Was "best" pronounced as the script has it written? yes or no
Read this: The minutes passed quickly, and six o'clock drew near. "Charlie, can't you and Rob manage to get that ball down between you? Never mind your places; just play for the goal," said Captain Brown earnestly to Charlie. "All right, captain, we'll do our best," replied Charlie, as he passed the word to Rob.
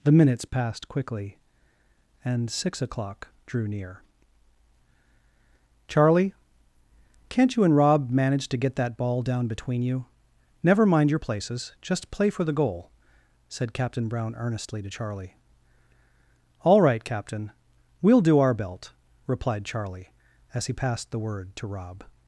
no